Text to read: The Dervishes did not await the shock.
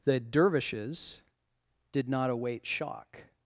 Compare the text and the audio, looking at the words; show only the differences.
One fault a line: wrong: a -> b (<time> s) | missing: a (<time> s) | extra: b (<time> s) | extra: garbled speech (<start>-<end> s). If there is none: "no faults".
missing: the (2.6 s)